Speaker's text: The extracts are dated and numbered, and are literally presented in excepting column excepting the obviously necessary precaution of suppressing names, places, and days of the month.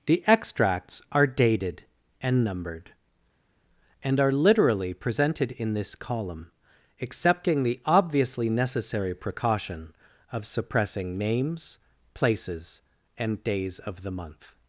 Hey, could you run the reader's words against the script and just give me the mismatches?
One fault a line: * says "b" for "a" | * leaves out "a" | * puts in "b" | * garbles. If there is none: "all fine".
* says "this" for "excepting"